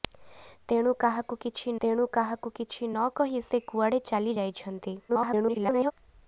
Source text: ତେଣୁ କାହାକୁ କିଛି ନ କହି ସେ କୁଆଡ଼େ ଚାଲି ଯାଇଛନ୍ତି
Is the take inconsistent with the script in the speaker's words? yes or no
yes